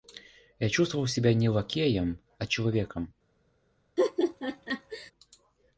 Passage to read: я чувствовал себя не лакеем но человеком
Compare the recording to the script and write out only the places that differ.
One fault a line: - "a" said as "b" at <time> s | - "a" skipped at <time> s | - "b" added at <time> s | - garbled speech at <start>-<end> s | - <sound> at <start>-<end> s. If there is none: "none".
- "но" said as "а" at 2.4 s
- laugh at 4.0-5.1 s